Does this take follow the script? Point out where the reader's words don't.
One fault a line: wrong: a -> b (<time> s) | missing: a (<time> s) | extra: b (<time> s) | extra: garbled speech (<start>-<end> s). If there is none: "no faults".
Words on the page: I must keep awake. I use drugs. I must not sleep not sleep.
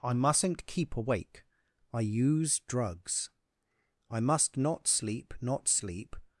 wrong: must -> mustn't (0.1 s)